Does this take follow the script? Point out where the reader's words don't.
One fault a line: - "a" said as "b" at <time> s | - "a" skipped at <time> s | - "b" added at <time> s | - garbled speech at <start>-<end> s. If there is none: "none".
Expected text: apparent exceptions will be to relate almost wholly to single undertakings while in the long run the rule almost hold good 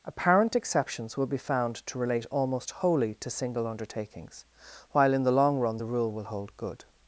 - "found" added at 1.4 s
- "almost" said as "will" at 6.1 s